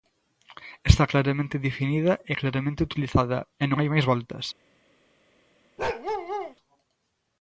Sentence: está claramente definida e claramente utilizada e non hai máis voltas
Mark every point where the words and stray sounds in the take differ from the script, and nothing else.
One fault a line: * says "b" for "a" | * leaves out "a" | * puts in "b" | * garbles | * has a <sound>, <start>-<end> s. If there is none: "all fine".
* has a bark, 5.8-6.5 s